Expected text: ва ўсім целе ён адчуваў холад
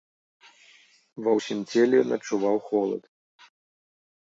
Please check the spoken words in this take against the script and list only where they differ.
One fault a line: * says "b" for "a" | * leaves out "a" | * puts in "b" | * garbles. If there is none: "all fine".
all fine